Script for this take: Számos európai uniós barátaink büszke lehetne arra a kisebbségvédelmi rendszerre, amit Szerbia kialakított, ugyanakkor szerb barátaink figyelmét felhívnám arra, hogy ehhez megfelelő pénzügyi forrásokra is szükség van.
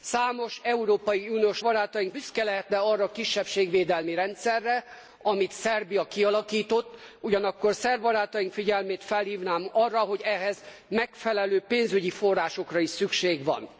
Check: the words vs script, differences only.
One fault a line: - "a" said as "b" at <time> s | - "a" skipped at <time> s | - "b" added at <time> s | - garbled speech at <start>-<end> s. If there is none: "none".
none